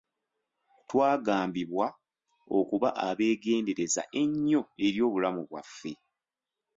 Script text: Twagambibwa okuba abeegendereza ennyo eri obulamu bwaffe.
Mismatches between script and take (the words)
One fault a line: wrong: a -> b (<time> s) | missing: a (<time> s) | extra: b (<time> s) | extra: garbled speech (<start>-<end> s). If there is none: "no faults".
no faults